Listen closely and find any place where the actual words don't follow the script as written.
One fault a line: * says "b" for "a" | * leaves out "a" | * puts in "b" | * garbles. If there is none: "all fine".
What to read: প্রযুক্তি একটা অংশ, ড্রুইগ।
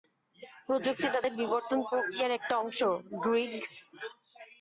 * puts in "তাদের বিবর্তন প্রক্রিয়ার"